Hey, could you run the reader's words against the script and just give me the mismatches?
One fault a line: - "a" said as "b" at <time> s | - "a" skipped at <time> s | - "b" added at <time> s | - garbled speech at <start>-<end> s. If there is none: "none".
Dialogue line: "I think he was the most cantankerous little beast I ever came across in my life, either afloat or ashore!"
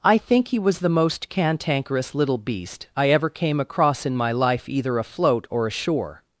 none